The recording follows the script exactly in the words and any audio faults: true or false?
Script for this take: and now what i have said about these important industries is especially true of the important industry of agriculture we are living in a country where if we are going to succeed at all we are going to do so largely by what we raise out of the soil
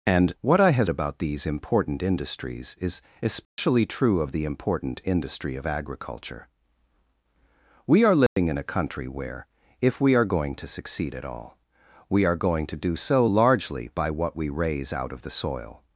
false